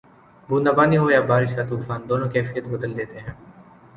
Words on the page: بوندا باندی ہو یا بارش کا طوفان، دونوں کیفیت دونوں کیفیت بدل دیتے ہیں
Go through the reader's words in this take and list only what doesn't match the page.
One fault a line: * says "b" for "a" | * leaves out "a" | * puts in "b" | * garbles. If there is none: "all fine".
* leaves out "دونوں کیفیت"